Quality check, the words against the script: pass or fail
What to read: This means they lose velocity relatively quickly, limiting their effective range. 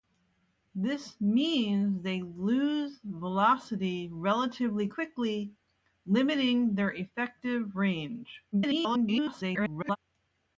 fail